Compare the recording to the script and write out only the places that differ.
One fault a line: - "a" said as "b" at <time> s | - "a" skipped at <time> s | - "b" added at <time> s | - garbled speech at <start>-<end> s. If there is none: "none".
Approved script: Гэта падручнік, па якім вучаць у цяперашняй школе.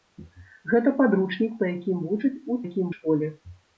- "цяперашняй" said as "якім" at 2.6 s